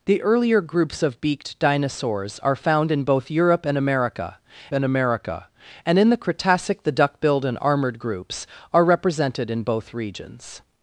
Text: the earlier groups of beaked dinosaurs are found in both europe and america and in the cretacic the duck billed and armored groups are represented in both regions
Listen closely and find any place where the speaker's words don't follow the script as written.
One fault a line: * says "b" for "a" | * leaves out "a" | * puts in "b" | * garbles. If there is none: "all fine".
* puts in "america and"